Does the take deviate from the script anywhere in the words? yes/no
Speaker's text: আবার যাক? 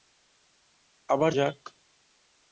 no